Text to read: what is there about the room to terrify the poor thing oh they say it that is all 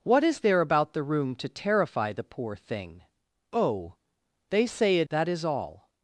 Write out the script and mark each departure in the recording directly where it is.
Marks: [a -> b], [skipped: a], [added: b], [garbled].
what is there about the room to terrify the poor thing oh they say it that is all